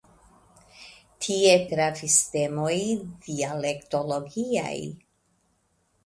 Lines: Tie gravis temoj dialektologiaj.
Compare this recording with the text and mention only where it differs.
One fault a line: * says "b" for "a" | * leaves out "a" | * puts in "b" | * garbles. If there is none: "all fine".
all fine